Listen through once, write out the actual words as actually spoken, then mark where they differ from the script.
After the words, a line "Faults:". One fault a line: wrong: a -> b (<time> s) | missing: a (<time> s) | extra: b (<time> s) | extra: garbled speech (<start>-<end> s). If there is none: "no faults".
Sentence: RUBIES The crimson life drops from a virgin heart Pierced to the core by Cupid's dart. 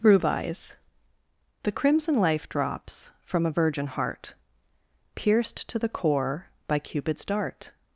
RUBIES The crimson life drops from a virgin heart Pierced to the core by Cupid's dart.
Faults:
no faults